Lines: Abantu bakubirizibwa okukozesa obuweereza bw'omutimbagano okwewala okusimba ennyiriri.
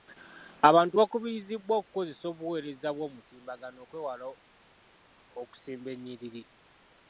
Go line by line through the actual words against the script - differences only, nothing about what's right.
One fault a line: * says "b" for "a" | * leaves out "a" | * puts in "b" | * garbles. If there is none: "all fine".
all fine